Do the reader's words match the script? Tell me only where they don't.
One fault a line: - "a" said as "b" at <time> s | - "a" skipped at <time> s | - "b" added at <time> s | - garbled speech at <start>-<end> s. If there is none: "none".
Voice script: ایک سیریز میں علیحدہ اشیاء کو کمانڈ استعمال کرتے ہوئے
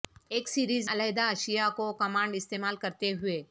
- "میں" skipped at 0.9 s